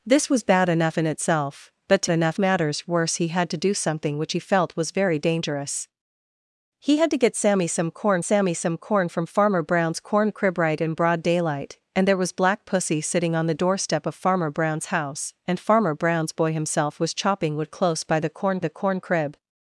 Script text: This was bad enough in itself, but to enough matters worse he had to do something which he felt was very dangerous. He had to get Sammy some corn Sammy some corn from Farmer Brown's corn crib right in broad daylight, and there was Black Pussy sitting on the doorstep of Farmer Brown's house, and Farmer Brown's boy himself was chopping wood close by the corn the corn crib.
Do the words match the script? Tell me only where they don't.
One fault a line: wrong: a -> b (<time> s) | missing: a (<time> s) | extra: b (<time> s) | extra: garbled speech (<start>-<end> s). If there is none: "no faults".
no faults